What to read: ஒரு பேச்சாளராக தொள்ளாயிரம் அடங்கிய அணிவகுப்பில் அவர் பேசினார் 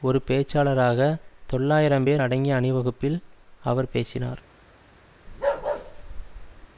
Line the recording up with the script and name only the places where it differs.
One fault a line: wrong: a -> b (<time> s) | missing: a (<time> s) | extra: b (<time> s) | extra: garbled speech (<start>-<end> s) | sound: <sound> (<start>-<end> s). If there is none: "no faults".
extra: பேர் (2.0 s)
sound: bark (5.3-6.7 s)